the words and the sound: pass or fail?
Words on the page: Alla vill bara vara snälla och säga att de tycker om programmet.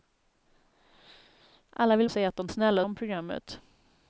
fail